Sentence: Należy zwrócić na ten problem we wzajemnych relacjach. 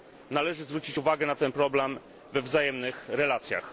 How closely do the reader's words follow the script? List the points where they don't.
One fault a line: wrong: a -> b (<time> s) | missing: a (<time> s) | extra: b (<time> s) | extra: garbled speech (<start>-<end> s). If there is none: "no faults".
extra: uwagę (1.0 s)